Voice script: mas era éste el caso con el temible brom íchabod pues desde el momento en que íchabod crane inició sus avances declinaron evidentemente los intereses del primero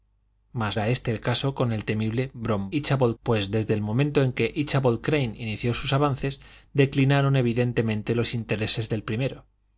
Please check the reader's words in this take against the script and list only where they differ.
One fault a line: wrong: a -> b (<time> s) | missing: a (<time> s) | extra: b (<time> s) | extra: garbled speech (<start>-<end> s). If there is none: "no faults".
no faults